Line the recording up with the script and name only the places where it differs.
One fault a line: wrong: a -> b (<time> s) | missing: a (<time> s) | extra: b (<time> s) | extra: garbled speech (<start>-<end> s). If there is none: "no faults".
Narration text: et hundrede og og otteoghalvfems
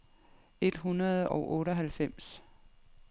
missing: og (1.5 s)